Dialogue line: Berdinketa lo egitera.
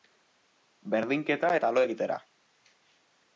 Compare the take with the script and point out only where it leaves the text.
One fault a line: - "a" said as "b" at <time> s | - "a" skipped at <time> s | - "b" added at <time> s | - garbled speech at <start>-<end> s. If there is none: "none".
- "eta" added at 1.6 s